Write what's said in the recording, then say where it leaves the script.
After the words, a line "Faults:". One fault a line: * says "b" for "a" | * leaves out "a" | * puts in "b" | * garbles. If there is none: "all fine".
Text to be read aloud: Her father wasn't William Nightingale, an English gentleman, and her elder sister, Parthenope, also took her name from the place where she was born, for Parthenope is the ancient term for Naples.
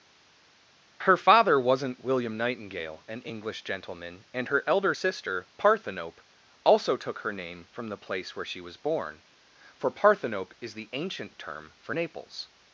Her father wasn't William Nightingale, an English gentleman, and her elder sister, Parthenope, also took her name from the place where she was born, for Parthenope is the ancient term for Naples.
Faults:
all fine